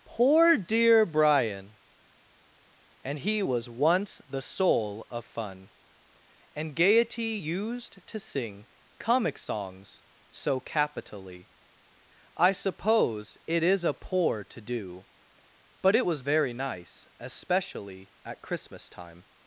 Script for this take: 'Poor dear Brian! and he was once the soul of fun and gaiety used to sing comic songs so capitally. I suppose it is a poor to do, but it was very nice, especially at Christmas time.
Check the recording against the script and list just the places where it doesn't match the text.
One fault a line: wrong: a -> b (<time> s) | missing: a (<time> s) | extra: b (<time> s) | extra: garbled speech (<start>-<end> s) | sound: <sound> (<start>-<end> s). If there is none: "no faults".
no faults